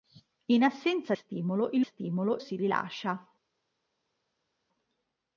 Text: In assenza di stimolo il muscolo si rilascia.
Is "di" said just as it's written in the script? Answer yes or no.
no